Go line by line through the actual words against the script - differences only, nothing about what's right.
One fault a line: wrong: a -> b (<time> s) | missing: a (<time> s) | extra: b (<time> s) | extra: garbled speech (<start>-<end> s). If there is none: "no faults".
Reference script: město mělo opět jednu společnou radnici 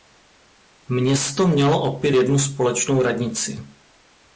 no faults